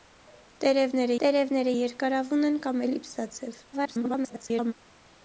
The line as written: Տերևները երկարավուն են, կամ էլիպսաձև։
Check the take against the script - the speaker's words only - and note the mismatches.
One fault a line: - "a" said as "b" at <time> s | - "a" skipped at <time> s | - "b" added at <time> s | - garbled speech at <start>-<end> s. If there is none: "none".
- "տերևները" added at 1.2 s
- garbled speech at 3.7-4.7 s